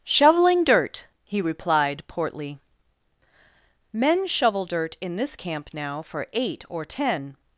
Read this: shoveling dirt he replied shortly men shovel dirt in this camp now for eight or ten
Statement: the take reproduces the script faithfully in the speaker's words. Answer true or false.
false